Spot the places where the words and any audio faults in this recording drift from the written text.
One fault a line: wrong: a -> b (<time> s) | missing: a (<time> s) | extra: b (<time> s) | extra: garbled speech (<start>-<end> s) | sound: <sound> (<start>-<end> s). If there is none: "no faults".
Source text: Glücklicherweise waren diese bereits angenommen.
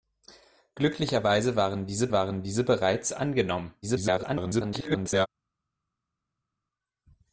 extra: waren diese (2.1 s)
extra: garbled speech (3.8-5.3 s)